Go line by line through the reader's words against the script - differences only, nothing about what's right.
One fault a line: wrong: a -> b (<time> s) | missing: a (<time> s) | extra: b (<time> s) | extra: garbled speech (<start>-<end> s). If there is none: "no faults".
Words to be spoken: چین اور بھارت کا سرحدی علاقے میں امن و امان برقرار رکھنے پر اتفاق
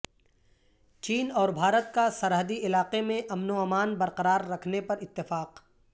no faults